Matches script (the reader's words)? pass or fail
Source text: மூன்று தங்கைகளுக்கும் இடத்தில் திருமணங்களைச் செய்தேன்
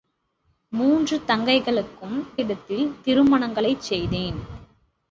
pass